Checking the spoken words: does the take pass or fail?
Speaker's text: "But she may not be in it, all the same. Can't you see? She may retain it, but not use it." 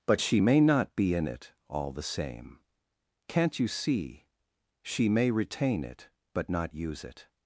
pass